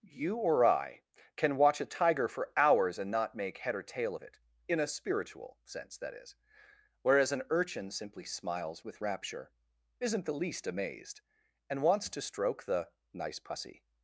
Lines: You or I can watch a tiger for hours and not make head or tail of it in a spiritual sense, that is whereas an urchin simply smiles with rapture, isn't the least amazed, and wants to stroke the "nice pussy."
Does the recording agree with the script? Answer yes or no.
yes